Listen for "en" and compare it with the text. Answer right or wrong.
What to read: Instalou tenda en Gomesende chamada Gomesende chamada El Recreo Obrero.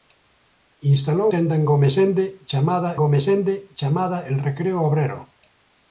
right